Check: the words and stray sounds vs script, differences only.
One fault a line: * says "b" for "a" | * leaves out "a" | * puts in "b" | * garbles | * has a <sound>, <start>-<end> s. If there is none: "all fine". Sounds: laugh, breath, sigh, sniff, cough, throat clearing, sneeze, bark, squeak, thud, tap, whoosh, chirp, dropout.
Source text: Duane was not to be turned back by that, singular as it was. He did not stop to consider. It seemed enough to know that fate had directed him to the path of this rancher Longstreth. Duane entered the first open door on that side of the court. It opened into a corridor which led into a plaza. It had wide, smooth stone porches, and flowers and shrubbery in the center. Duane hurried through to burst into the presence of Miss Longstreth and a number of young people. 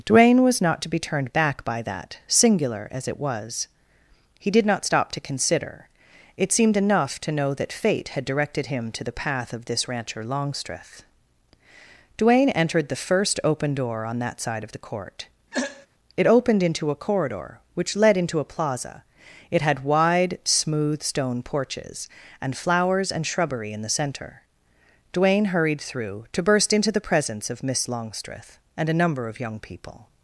* has a throat clearing, 15.5-15.9 s